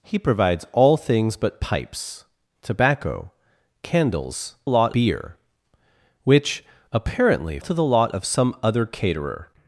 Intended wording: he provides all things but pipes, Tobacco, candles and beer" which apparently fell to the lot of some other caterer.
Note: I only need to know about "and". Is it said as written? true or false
false